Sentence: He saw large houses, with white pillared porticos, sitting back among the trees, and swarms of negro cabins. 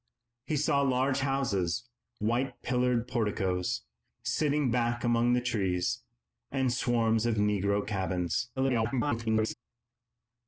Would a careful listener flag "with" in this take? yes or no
yes